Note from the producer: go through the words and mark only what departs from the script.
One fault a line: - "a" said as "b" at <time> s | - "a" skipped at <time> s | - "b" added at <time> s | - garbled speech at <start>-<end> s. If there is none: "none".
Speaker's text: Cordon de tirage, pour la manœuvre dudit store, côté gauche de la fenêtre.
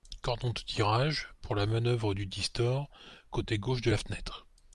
none